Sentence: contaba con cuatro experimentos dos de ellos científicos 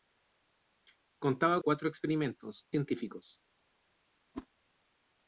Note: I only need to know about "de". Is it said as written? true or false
false